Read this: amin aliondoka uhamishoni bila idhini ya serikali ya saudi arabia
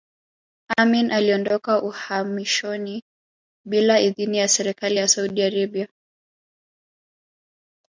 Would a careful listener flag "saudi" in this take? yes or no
no